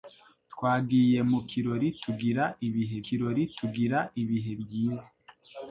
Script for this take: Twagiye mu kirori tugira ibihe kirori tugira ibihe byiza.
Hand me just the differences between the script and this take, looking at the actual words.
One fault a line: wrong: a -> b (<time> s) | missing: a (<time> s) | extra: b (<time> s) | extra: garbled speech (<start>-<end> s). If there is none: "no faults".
no faults